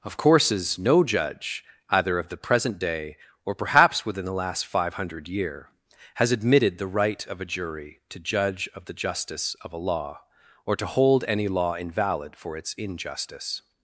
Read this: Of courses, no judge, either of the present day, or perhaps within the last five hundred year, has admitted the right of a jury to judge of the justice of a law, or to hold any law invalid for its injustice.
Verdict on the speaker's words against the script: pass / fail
pass